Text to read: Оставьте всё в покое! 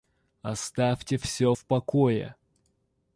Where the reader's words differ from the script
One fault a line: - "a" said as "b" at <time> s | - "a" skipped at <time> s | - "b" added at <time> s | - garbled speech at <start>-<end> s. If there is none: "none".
none